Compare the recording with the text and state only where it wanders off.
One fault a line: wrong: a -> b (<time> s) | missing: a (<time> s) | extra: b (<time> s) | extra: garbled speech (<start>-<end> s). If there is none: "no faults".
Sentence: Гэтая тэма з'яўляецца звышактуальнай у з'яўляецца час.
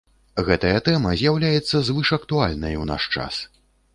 wrong: з'яўляецца -> наш (2.9 s)